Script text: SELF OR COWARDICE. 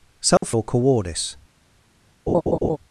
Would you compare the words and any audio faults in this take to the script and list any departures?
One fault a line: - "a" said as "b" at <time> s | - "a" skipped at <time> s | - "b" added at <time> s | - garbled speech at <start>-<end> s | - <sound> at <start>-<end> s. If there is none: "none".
- dropout at 0.4-0.4 s
- laugh at 2.3-2.8 s